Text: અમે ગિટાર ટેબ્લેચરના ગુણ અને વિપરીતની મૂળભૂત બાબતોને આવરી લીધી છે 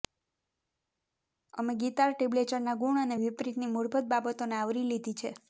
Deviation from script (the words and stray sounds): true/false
false